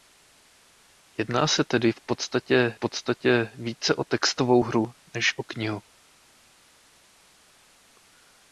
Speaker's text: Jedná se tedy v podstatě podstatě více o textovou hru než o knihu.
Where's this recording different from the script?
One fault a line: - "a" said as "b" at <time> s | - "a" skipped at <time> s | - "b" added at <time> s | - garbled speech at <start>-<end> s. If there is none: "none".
none